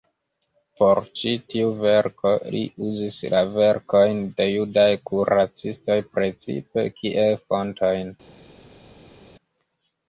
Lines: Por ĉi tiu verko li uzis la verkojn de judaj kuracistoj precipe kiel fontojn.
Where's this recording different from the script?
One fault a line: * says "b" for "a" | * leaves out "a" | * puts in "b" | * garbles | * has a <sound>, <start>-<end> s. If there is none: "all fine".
all fine